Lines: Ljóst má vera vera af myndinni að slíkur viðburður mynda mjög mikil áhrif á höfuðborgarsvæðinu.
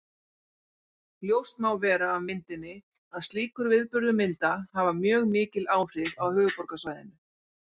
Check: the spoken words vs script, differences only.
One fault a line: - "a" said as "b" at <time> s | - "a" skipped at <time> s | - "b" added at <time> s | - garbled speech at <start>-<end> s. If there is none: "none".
- "vera" skipped at 2.1 s
- "hafa" added at 4.8 s